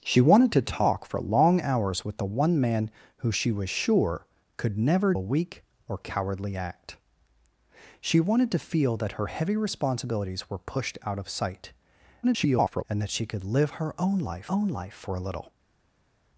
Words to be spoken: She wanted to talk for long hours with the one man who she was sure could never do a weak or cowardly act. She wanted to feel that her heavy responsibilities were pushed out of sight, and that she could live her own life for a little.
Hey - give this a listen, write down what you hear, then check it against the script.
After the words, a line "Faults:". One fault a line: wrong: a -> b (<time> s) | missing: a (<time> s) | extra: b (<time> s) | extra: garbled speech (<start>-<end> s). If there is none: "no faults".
She wanted to talk for long hours with the one man who she was sure could never a weak or cowardly act. She wanted to feel that her heavy responsibilities were pushed out of sight, [garbled] and that she could live her own life own life for a little.
Faults:
missing: do (5.1 s)
extra: garbled speech (12.2-12.8 s)
extra: own life (14.5 s)